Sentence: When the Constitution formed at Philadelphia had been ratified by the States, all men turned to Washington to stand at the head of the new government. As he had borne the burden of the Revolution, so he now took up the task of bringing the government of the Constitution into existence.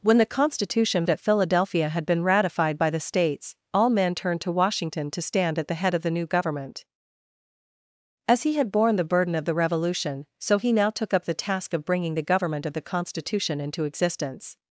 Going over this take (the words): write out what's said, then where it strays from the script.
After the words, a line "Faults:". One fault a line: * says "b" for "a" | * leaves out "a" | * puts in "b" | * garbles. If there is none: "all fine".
When the Constitution at Philadelphia had been ratified by the States, all men turned to Washington to stand at the head of the new government. As he had borne the burden of the Revolution, so he now took up the task of bringing the government of the Constitution into existence.
Faults:
* leaves out "formed"